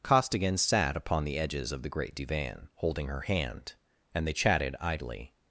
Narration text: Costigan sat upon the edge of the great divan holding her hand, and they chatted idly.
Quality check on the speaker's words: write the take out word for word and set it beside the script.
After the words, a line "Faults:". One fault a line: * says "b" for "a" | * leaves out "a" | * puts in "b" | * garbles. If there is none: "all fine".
Costigan sat upon the edges of the great divan holding her hand, and they chatted idly.
Faults:
* says "edges" for "edge"